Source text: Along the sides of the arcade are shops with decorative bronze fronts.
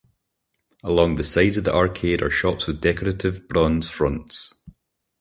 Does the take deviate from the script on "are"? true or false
false